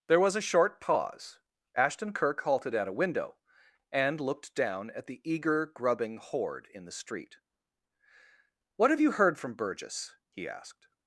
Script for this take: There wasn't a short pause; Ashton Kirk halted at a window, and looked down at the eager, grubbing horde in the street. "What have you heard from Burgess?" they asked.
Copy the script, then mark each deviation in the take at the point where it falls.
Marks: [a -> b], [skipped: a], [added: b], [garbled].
There [wasn't -> was] a short pause; Ashton Kirk halted at a window, and looked down at the eager, grubbing horde in the street. "What have you heard from Burgess?" [they -> he] asked.